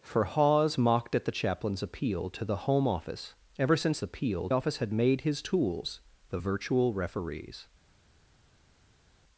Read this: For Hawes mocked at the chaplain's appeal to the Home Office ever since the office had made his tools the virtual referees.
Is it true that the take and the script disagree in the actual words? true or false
true